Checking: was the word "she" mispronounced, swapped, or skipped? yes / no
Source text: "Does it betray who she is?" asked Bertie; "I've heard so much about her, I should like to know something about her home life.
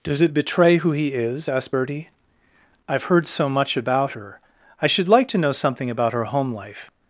yes